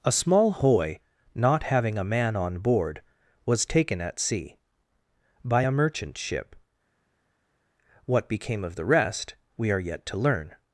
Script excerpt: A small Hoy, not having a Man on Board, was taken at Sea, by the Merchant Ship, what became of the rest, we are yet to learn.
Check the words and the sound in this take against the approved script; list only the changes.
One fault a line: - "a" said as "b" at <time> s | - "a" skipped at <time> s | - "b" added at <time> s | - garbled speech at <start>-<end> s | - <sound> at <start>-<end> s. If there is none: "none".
- "the" said as "a" at 5.6 s